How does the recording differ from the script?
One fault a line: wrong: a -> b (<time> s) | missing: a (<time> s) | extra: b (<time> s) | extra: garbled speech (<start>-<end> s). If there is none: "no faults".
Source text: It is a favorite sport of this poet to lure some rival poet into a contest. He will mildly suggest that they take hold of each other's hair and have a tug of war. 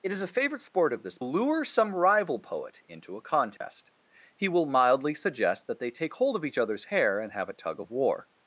missing: poet to (1.2 s)